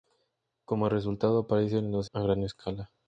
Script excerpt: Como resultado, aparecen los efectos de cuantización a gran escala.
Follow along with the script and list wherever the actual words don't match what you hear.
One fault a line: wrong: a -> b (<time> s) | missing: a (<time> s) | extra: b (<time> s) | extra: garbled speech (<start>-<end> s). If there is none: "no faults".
missing: efectos de cuantización (2.1 s)